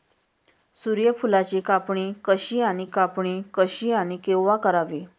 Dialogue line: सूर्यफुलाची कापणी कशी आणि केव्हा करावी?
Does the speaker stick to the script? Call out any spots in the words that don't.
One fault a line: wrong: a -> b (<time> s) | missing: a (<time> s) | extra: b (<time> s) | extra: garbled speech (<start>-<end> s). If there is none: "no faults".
extra: कापणी कशी आणि (2.8 s)